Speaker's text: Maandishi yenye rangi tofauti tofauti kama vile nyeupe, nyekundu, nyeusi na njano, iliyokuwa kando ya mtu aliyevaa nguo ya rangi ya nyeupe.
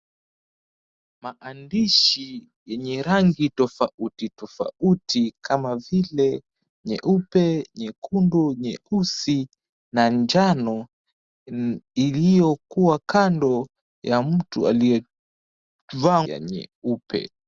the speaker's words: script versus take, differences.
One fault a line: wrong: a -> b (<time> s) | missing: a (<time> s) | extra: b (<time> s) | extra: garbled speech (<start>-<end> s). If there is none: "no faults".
missing: nguo ya rangi (16.2 s)